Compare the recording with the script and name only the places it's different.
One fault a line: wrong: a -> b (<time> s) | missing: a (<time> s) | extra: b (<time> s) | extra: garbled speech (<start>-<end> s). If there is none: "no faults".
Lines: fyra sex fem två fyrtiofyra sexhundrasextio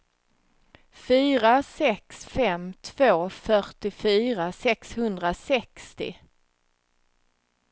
no faults